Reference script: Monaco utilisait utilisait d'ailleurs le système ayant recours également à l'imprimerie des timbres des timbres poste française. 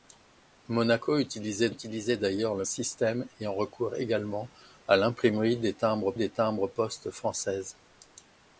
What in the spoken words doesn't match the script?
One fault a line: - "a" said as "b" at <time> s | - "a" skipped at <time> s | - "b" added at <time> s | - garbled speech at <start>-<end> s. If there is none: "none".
none